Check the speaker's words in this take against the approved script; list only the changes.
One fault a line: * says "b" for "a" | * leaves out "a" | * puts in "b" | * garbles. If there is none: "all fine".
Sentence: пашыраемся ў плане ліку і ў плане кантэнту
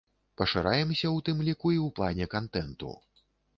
* says "тым" for "плане"